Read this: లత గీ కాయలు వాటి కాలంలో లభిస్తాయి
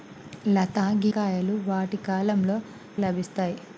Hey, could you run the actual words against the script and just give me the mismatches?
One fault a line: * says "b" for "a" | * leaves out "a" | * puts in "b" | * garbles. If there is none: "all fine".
all fine